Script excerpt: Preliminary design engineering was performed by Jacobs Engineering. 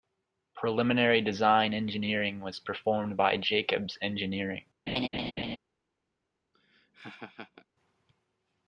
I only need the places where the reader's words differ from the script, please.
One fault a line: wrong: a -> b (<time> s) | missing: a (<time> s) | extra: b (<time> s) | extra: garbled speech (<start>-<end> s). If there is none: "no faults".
no faults